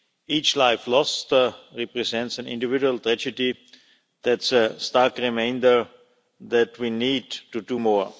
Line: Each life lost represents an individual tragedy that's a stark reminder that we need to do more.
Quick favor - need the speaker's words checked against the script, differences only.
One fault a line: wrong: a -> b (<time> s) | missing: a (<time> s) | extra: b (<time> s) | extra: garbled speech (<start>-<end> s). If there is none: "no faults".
no faults